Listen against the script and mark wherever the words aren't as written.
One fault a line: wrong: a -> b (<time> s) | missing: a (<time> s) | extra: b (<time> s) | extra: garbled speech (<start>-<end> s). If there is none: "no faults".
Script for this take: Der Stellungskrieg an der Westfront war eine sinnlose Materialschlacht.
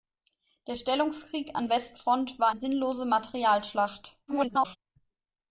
missing: der (1.7 s)
missing: eine (2.5 s)
extra: garbled speech (4.3-4.8 s)